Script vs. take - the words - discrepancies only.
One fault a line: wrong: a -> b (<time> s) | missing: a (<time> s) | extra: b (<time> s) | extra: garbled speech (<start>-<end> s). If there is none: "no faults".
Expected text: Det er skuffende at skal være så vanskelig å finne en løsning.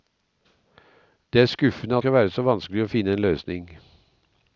no faults